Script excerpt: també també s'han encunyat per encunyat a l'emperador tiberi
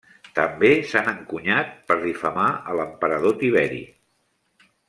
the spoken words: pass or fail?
fail